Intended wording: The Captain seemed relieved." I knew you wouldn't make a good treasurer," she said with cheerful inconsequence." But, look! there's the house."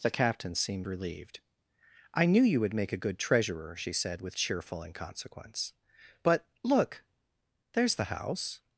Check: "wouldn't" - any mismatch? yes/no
yes